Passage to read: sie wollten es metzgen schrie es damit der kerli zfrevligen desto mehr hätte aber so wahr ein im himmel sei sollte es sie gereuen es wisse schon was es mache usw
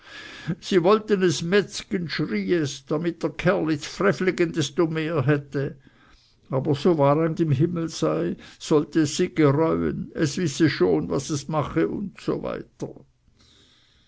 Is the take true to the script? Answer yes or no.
yes